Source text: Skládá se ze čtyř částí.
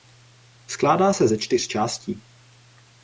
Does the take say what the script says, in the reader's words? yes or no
yes